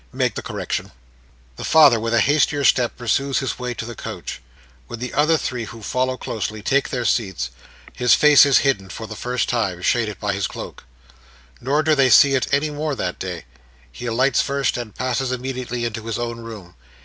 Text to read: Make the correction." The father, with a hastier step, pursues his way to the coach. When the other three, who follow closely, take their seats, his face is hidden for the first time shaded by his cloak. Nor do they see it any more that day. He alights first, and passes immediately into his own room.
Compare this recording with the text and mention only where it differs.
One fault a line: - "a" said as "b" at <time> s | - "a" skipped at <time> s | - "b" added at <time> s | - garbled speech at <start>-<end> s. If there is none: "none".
none